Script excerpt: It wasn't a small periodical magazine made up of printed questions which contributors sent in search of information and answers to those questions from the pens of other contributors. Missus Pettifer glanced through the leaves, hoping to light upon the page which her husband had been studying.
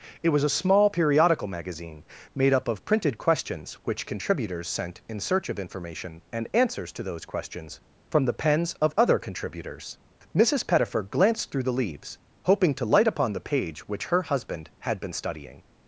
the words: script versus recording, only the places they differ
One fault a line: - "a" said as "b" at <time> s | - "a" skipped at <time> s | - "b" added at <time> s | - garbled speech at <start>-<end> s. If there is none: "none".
- "wasn't" said as "was" at 0.3 s